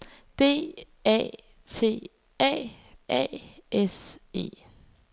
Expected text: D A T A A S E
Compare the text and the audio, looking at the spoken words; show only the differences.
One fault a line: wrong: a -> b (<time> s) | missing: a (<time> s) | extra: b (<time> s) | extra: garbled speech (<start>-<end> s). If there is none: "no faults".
no faults